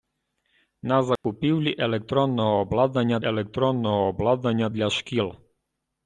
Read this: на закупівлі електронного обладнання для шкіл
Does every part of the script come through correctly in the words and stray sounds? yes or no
no